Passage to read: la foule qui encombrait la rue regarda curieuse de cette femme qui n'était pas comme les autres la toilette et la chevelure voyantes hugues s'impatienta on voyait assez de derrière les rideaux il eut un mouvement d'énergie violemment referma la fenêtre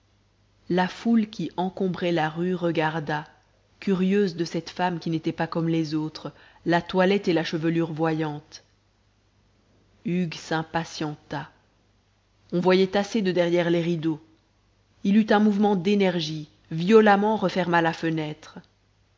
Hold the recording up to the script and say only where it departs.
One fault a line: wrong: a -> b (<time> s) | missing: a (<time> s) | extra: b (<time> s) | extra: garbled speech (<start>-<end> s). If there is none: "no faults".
no faults